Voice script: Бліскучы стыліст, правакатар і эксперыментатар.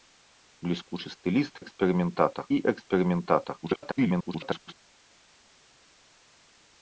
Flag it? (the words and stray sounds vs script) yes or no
yes